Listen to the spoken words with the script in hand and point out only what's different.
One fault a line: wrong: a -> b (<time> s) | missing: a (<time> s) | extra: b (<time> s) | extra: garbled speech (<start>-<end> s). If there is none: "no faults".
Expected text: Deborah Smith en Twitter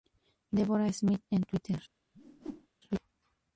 no faults